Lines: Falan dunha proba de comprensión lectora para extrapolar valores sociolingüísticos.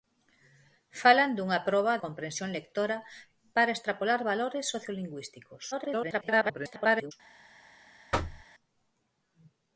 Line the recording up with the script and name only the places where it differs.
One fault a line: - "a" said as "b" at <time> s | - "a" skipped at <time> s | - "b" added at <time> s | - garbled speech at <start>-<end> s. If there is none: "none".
- "de" skipped at 1.9 s
- garbled speech at 5.7-7.1 s